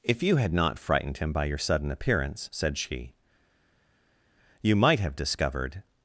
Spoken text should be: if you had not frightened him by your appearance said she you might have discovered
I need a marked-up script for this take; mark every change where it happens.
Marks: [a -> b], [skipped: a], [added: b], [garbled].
if you had not frightened him by your [added: sudden] appearance said she you might have discovered